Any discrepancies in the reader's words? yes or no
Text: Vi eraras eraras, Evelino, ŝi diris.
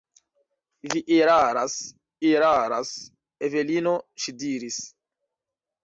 no